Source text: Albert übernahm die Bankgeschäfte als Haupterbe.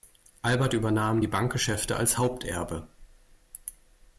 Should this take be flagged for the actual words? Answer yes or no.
no